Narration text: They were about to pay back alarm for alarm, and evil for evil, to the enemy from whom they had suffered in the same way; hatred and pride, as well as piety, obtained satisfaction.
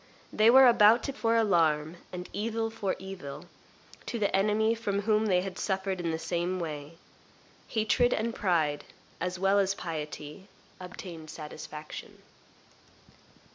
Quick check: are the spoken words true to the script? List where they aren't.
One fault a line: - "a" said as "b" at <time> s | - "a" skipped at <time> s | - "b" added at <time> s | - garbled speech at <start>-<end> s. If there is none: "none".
- "pay back alarm" skipped at 1.1 s